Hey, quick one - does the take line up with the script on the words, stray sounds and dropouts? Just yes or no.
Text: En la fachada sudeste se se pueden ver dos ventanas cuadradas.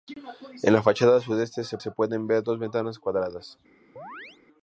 no